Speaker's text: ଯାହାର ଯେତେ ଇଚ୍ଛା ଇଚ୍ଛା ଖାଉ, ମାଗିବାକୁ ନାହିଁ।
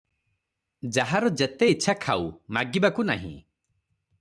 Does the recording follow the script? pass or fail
fail